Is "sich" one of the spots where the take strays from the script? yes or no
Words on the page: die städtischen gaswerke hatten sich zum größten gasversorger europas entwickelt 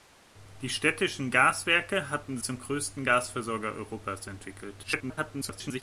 yes